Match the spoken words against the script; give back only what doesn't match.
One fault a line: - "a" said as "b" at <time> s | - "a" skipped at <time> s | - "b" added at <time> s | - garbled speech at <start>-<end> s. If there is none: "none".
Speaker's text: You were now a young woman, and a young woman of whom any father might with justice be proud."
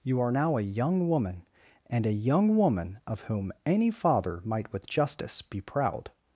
- "were" said as "are" at 0.2 s